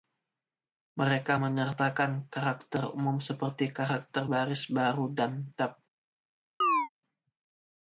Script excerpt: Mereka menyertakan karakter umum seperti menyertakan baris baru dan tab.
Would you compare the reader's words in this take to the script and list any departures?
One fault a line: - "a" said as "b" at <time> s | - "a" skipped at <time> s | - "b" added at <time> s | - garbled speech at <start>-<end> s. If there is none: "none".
- "menyertakan" said as "karakter" at 3.7 s